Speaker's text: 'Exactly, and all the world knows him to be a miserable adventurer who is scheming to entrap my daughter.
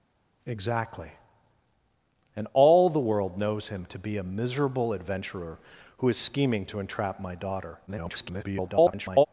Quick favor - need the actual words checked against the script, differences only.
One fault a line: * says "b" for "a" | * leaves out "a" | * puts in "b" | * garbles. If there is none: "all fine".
* garbles